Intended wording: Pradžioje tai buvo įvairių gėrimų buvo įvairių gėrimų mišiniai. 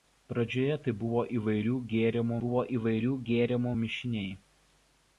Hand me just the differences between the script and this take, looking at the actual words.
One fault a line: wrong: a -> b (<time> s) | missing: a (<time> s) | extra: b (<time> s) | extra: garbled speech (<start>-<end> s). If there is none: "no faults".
no faults